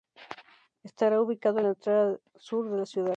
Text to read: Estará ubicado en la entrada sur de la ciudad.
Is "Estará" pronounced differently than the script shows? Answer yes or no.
no